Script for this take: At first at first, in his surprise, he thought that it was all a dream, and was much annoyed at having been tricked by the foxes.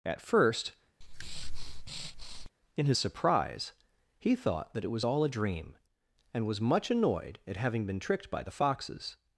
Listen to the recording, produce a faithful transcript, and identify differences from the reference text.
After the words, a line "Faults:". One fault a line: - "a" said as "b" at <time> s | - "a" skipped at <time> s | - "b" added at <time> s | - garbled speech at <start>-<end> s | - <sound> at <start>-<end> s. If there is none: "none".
At first, in his surprise, he thought that it was all a dream, and was much annoyed at having been tricked by the foxes.
Faults:
- "at first" skipped at 0.7 s
- breath at 1.0-2.5 s